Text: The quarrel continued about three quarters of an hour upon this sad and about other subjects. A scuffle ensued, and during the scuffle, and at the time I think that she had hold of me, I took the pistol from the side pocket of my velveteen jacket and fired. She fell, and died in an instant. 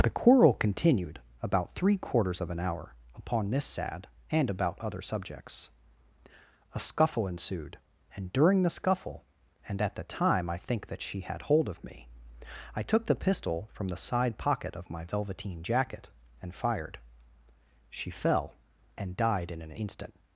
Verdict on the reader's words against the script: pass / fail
pass